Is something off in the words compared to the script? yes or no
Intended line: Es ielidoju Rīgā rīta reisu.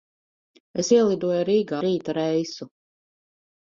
no